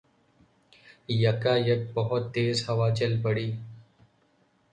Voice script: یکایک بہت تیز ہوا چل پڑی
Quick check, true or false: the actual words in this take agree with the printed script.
true